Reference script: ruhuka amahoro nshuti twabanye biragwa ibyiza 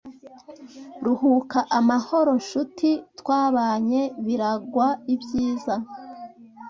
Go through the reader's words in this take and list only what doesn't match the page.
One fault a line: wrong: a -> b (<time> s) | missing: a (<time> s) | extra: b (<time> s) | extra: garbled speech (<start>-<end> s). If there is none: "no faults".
no faults